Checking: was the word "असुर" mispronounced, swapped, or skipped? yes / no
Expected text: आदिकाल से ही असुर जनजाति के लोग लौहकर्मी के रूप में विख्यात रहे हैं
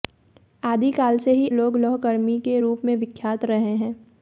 yes